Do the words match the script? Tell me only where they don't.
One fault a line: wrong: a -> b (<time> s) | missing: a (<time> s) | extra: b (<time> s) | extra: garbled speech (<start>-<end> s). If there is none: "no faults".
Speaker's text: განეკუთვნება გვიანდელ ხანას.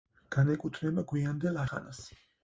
no faults